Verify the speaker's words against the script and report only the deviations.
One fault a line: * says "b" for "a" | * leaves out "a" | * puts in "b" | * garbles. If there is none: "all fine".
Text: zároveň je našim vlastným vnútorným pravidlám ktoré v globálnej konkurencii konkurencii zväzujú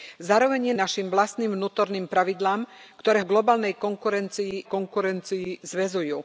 all fine